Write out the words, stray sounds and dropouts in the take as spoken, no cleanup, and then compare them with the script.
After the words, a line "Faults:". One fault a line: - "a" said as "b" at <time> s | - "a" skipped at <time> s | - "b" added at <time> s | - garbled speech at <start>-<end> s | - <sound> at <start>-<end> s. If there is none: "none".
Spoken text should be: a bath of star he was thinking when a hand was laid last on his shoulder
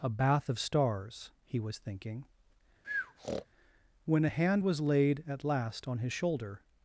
a bath of stars he was thinking when a hand was laid at last on his shoulder
Faults:
- "star" said as "stars" at 0.6 s
- breath at 2.8-3.5 s
- "at" added at 5.3 s